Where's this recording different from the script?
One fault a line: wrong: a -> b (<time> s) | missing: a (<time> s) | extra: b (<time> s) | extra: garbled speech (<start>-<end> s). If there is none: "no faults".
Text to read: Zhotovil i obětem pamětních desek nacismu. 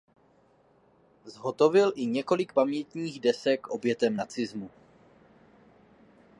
wrong: obětem -> několik (2.0 s)
extra: obětem (3.7 s)